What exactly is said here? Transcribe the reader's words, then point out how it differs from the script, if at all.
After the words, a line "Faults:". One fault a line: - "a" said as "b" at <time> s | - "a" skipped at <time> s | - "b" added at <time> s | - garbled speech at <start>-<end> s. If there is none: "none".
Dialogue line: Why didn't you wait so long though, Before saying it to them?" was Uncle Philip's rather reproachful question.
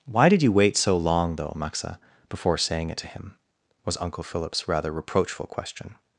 Why did you wait so long though, Maxa, before saying it to him?" was Uncle Philip's rather reproachful question.
Faults:
- "didn't" said as "did" at 0.3 s
- "Maxa" added at 1.6 s
- "them" said as "him" at 3.1 s